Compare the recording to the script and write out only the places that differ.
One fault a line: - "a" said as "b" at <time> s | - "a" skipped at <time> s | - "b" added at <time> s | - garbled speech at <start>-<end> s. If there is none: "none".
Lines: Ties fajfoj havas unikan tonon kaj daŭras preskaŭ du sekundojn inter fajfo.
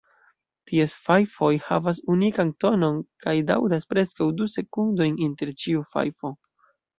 - "ĉiu" added at 5.6 s